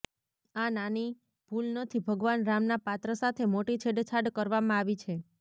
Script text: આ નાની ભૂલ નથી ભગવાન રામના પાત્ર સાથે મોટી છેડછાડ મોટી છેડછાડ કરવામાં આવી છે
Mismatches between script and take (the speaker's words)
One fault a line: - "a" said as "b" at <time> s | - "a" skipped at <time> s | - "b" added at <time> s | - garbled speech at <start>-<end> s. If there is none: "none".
- "મોટી છેડછાડ" skipped at 4.3 s